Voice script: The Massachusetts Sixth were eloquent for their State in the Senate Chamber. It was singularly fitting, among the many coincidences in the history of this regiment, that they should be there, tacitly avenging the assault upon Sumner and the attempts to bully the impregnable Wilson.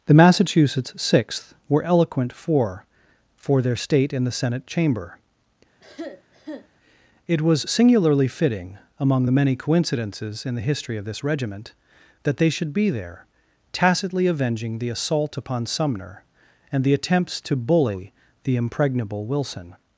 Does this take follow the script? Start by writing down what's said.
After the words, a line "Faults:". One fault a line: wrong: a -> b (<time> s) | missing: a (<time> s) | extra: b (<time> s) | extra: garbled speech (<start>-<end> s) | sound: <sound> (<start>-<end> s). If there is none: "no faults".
The Massachusetts Sixth were eloquent for for their State in the Senate Chamber. It was singularly fitting, among the many coincidences in the history of this regiment, that they should be there, tacitly avenging the assault upon Sumner and the attempts to bully the impregnable Wilson.
Faults:
extra: for (3.4 s)
sound: cough (5.8-6.7 s)